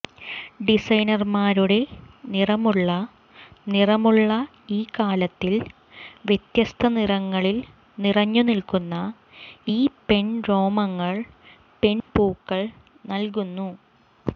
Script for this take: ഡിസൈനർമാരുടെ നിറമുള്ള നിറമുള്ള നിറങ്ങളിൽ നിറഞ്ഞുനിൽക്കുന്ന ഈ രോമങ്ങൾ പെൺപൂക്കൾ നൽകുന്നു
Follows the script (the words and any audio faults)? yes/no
no